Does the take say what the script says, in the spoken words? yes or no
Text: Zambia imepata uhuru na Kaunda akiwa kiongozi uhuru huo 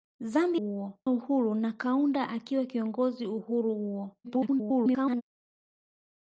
no